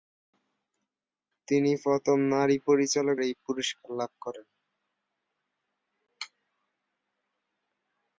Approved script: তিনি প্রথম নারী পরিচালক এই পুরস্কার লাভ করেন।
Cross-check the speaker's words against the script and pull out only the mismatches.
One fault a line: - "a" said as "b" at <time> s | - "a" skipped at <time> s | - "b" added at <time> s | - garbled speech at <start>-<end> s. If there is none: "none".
none